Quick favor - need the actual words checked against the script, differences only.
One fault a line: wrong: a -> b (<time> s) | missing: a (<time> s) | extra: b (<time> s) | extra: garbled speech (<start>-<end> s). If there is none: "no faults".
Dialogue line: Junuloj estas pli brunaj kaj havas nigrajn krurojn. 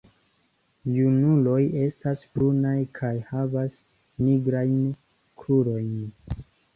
missing: pli (2.2 s)